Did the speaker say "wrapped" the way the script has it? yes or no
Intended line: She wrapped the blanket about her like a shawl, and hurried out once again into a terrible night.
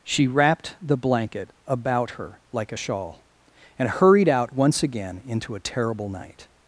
yes